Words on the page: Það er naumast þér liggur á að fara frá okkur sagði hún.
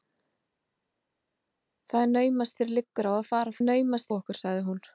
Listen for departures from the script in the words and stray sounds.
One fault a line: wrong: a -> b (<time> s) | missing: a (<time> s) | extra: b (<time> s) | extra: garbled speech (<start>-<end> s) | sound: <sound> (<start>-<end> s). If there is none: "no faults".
wrong: frá -> naumast (3.6 s)